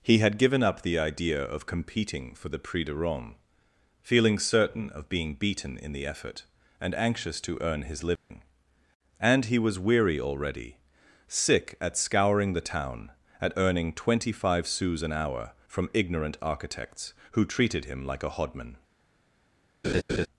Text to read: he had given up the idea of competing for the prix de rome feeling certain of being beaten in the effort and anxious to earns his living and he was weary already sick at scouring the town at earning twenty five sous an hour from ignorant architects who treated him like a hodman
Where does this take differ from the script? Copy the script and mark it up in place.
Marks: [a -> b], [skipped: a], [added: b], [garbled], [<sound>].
he had given up the idea of competing for the prix de rome feeling certain of being beaten in the effort and anxious to [earns -> earn] his living [dropout] and he was weary already sick at scouring the town at earning twenty five sous an hour from ignorant architects who treated him like a hodman [laugh]